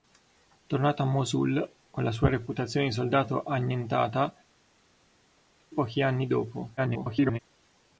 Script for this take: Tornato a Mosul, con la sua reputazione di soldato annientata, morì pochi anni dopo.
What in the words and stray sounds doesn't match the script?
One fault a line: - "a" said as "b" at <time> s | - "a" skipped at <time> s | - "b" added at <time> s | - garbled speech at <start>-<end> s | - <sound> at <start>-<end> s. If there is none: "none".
- "morì" skipped at 4.3 s
- garbled speech at 6.8-7.4 s